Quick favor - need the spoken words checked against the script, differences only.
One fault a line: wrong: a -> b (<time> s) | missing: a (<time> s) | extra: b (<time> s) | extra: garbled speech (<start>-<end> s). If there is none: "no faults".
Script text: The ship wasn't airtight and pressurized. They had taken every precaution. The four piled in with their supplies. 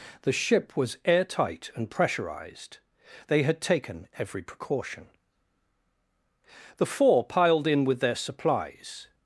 wrong: wasn't -> was (0.8 s)